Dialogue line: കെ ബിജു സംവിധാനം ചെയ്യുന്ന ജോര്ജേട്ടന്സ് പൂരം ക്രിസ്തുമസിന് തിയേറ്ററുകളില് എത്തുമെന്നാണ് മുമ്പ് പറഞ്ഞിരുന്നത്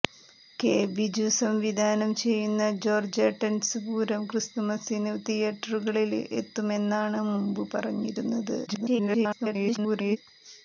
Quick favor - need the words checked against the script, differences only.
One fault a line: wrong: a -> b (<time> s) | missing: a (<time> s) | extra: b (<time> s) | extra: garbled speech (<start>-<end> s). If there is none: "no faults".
extra: garbled speech (8.7-10.2 s)